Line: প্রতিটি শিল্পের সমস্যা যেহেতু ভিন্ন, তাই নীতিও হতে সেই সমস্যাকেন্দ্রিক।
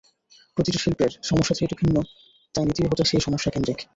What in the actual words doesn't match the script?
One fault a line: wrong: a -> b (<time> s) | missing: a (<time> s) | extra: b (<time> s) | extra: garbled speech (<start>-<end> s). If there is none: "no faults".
no faults